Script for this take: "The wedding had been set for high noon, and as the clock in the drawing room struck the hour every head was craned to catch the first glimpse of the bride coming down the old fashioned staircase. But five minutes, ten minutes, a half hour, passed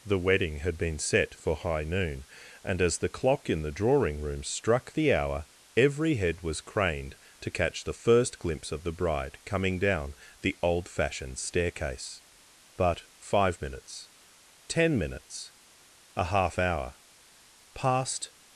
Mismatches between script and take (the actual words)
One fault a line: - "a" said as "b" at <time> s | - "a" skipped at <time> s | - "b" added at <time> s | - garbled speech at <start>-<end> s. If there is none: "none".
none